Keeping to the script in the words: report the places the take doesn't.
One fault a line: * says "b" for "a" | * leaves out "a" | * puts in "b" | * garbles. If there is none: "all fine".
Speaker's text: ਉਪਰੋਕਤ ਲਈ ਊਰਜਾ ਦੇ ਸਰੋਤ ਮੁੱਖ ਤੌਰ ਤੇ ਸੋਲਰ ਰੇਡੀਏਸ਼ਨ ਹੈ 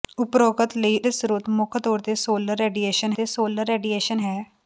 * leaves out "ਊਰਜਾ"
* puts in "ਤੇ ਸੋਲਰ ਰੇਡੀਏਸ਼ਨ"